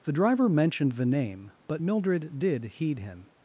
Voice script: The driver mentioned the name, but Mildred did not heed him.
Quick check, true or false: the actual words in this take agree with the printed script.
false